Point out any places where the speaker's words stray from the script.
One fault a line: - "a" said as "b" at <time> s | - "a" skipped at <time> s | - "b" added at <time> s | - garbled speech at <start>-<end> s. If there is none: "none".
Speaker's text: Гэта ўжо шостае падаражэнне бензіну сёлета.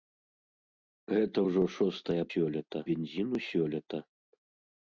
- "падаражэнне" said as "сёлета" at 2.3 s